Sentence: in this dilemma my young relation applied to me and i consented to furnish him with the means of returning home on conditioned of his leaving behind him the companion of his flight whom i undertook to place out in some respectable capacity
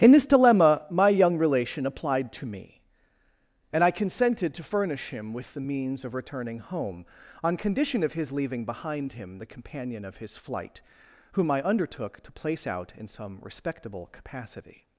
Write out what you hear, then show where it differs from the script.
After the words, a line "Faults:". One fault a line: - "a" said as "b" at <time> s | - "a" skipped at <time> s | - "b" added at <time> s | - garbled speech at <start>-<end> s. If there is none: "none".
in this dilemma my young relation applied to me and i consented to furnish him with the means of returning home on condition of his leaving behind him the companion of his flight whom i undertook to place out in some respectable capacity
Faults:
- "conditioned" said as "condition" at 7.6 s